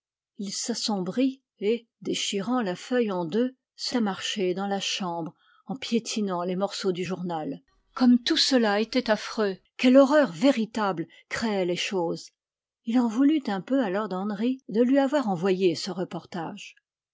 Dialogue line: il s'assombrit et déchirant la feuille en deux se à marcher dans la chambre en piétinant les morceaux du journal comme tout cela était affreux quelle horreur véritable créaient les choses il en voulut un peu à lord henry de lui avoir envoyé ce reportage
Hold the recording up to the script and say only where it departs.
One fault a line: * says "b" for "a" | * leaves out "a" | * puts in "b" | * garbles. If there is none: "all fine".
all fine